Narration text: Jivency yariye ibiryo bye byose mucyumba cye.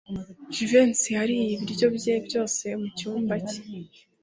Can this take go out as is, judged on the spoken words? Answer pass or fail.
pass